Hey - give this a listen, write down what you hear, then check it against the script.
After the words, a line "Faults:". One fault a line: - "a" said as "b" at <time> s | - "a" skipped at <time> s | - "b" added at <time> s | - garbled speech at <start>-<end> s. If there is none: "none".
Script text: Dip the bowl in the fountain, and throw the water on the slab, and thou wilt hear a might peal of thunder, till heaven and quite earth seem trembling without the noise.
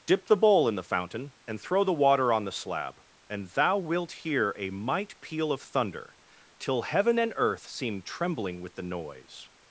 Dip the bowl in the fountain, and throw the water on the slab, and thou wilt hear a might peal of thunder, till heaven and earth seem trembling with the noise.
Faults:
- "quite" skipped at 7.3 s
- "without" said as "with" at 8.6 s